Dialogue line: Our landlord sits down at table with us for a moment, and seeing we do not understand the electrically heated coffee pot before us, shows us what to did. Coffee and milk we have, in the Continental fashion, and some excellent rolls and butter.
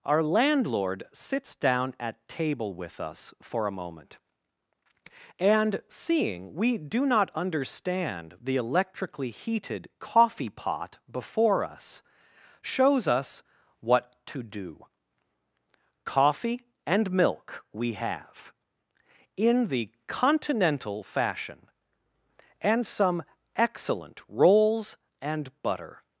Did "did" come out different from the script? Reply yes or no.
yes